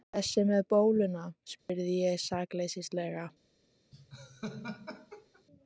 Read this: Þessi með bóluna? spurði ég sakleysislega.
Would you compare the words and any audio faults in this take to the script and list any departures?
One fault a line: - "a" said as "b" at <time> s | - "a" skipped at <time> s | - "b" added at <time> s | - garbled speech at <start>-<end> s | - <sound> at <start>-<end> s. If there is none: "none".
- dropout at 1.6-1.7 s
- laugh at 3.9-5.4 s